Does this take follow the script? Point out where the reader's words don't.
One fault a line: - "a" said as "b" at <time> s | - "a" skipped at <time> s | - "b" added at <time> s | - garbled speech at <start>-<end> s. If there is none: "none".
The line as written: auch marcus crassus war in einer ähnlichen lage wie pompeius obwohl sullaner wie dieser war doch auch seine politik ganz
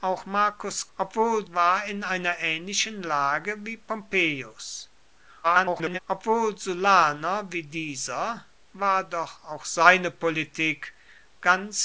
- "crassus" said as "obwohl" at 1.0 s
- garbled speech at 5.4-6.0 s